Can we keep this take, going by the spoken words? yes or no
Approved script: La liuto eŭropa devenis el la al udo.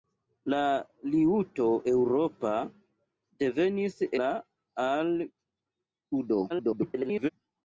no